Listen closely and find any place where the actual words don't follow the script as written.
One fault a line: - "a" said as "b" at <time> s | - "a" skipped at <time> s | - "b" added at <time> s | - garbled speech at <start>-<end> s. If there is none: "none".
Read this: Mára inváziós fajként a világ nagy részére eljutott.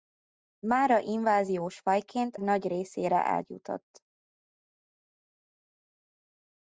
- "a világ" skipped at 2.4 s